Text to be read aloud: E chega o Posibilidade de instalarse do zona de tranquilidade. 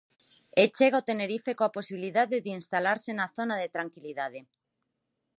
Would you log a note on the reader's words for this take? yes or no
yes